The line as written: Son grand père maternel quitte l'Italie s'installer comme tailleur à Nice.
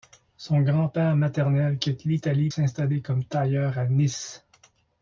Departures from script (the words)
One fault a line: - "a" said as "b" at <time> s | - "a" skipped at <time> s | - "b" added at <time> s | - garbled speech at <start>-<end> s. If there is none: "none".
none